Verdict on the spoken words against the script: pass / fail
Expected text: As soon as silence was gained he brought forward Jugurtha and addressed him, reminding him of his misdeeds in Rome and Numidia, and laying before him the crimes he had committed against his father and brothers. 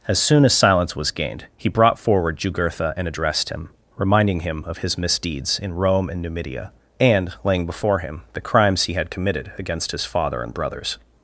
pass